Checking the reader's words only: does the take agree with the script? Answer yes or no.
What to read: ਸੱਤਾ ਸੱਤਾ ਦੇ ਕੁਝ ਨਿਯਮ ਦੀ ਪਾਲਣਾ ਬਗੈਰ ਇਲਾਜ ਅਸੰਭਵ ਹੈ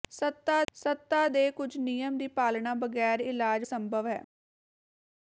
yes